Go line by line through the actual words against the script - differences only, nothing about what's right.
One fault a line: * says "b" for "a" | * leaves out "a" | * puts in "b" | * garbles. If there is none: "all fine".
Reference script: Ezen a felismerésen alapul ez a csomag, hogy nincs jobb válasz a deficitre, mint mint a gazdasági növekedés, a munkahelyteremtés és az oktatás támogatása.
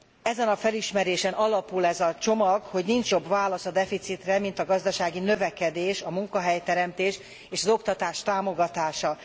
* leaves out "mint"